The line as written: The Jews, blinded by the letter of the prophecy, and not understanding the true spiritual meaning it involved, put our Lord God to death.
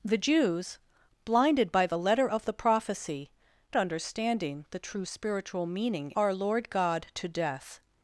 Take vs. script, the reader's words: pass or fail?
fail